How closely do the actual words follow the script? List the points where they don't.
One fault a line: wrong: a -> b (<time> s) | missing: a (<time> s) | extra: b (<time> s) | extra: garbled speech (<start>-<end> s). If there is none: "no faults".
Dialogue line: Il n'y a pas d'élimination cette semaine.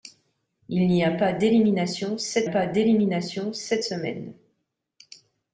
extra: pas d'élimination cette (2.4 s)